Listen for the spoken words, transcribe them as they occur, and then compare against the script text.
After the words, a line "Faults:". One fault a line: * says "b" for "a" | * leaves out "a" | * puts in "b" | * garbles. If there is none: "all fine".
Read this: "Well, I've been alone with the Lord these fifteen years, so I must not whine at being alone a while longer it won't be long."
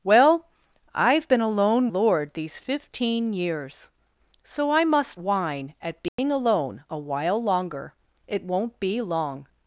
"Well, I've been alone Lord these fifteen years, so I must whine at being alone a while longer it won't be long."
Faults:
* leaves out "with the"
* leaves out "not"